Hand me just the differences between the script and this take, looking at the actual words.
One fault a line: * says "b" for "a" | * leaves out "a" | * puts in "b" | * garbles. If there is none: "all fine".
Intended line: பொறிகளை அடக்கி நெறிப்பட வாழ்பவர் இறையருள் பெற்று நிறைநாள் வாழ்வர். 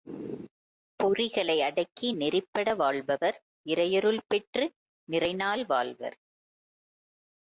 all fine